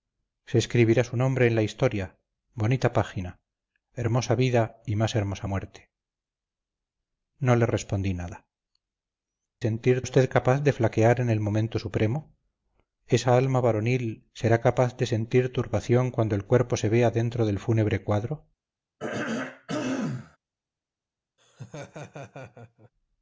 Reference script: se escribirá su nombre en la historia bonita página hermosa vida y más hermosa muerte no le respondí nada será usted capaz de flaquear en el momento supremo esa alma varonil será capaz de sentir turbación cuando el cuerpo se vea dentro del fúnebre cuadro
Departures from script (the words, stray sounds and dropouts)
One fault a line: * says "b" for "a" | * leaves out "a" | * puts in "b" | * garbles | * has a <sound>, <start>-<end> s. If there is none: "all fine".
* says "sentir" for "será"
* has a throat clearing, 19.0-20.4 s
* has a laugh, 21.4-22.9 s